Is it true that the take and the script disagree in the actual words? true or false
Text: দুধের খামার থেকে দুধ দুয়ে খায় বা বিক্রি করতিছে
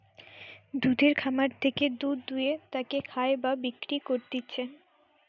true